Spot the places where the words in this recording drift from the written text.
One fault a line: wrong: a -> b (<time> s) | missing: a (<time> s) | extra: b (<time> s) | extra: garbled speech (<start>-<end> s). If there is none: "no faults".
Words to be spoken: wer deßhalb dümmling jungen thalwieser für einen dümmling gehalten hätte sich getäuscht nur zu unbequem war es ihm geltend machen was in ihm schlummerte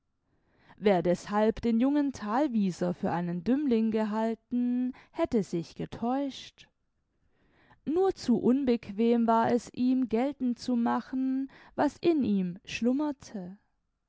wrong: dümmling -> den (1.6 s)
extra: zu (10.6 s)